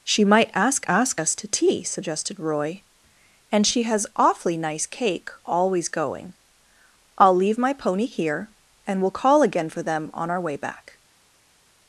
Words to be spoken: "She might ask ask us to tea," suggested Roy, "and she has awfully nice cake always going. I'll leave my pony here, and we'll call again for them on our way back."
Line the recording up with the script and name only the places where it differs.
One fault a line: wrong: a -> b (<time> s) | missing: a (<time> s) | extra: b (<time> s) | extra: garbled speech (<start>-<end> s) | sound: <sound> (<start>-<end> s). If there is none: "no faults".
no faults